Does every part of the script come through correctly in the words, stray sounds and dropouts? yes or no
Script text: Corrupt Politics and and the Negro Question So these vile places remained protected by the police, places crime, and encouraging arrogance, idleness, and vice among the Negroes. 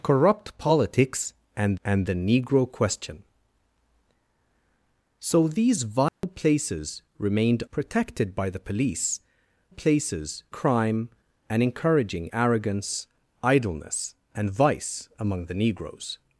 no